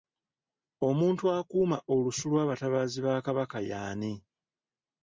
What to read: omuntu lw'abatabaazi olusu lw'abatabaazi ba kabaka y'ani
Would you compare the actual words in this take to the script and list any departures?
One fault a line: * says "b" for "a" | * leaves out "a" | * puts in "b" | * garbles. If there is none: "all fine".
* says "akuuma" for "lw'abatabaazi"